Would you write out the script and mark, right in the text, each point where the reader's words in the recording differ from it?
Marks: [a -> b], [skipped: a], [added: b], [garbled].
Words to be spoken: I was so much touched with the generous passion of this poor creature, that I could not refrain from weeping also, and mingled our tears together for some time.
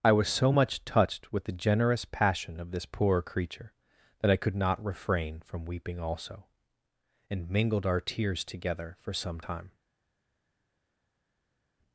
I was so much touched with the generous passion of this poor creature, that I could not refrain from weeping also, and mingled our tears together for some time.